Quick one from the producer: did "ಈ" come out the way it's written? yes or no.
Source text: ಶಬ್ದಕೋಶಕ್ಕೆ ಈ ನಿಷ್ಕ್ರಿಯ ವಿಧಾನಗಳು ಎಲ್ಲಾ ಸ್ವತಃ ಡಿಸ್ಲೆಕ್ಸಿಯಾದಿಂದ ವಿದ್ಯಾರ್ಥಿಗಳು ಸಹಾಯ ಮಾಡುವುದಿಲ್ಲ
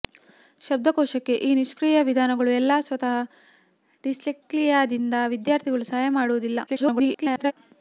yes